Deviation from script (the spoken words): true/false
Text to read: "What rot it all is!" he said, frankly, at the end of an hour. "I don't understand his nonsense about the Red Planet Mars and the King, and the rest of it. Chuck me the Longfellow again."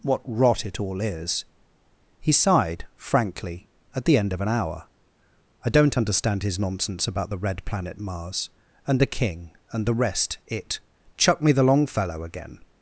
true